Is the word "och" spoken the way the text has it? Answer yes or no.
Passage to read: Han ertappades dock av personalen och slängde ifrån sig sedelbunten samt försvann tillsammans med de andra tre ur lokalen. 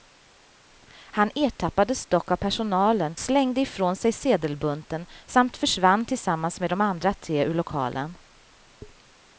no